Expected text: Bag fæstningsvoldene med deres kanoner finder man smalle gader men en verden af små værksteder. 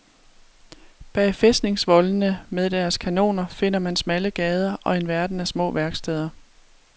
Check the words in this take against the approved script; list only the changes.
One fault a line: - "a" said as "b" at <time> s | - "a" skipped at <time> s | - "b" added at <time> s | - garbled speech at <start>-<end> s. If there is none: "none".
- "men" said as "og" at 4.8 s